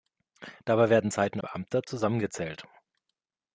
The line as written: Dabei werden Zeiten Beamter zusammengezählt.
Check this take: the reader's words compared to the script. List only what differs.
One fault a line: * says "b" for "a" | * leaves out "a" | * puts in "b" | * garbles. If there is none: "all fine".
all fine